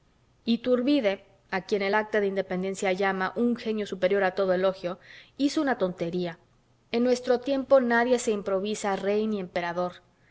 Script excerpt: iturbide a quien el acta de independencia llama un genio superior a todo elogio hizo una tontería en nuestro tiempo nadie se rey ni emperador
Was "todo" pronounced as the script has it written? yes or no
yes